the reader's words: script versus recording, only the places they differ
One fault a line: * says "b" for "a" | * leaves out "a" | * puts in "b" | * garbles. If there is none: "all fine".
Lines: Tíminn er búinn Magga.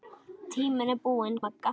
all fine